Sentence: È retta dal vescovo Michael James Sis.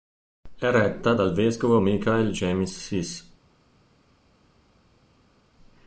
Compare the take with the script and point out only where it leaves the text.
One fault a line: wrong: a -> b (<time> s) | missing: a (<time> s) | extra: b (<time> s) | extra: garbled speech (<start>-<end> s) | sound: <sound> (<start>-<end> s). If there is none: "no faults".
no faults